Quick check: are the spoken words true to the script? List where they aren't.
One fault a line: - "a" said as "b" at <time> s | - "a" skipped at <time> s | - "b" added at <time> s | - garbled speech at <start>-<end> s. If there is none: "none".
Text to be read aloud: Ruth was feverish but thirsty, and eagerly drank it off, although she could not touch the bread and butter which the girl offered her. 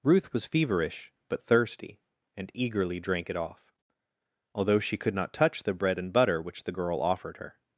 none